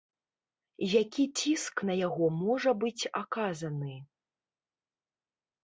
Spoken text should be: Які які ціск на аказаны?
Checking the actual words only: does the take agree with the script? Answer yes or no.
no